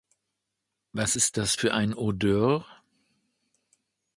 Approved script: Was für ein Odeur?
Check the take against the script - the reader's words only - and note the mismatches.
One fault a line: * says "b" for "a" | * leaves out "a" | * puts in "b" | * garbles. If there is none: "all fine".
* puts in "ist das"